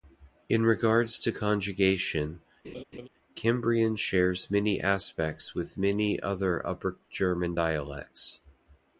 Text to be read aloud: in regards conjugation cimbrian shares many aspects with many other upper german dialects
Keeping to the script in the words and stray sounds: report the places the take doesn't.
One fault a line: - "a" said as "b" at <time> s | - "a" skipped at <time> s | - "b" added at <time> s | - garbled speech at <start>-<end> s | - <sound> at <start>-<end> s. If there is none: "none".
- "to" added at 1.2 s
- laugh at 2.6-3.1 s